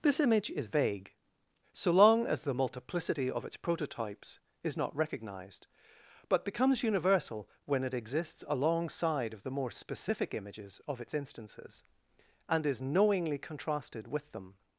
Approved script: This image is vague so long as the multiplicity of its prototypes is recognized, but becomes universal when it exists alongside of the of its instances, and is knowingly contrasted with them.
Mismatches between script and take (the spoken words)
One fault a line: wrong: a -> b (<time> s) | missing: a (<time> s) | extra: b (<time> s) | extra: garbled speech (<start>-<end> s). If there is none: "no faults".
extra: not (4.8 s)
extra: more specific images (9.5 s)